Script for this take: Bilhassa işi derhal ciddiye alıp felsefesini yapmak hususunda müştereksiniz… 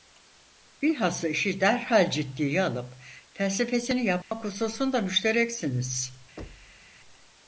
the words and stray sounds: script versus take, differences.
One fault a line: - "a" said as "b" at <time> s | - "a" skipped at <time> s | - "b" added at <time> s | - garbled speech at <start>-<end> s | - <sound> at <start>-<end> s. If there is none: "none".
- dropout at 4.2-4.3 s
- thud at 6.4-6.9 s